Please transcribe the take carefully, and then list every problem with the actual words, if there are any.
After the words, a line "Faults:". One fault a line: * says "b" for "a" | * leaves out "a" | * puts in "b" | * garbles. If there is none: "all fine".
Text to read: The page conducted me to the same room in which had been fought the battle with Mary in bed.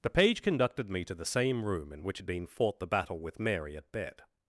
The page conducted me to the same room in which had been fought the battle with Mary at bed.
Faults:
* says "at" for "in"